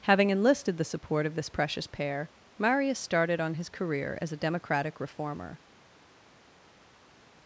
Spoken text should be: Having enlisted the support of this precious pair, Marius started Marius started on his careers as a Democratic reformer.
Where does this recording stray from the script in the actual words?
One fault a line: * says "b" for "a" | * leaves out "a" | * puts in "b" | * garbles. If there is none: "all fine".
* leaves out "Marius started"
* says "career" for "careers"